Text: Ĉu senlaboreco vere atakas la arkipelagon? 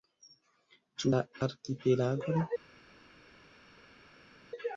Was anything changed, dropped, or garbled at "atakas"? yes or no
yes